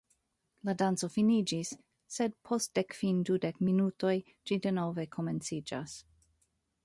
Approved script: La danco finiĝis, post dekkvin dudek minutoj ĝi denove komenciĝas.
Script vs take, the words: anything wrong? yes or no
yes